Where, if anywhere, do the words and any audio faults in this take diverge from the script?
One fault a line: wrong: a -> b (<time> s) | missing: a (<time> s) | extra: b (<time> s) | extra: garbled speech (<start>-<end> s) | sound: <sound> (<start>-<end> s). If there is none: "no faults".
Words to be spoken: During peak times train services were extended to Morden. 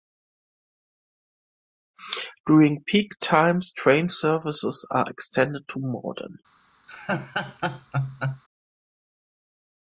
wrong: were -> are (4.9 s)
sound: laugh (6.9-8.4 s)